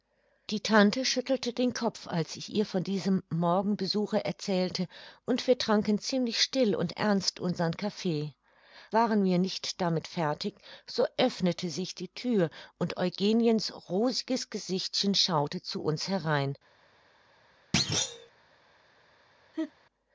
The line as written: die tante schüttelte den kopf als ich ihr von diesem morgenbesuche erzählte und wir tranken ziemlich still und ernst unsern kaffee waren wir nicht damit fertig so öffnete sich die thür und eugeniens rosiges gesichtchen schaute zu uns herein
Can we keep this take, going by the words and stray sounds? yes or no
no